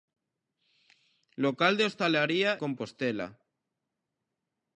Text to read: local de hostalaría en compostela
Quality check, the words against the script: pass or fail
fail